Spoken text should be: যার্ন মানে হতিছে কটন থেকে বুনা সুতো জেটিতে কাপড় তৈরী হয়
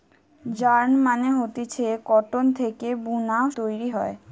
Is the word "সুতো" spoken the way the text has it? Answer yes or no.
no